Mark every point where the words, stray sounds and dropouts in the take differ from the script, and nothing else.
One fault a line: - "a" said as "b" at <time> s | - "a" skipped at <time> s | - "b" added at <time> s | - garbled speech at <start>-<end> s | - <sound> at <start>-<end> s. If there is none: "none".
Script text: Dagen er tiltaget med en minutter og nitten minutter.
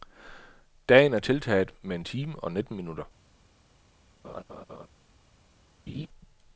- "minutter" said as "time" at 2.0 s
- laugh at 4.2-4.9 s
- laugh at 5.9-6.1 s